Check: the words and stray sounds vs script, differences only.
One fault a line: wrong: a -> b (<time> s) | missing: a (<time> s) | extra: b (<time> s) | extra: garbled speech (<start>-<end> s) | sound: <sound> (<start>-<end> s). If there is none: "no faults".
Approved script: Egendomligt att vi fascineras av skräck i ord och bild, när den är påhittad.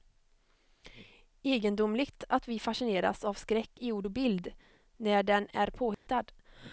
sound: dropout (5.9-6.1 s)